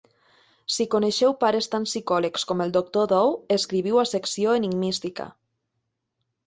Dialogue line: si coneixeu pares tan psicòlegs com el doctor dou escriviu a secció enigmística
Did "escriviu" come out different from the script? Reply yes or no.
no